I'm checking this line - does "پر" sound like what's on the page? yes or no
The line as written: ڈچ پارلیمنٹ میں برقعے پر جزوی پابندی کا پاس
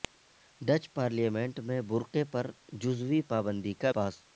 yes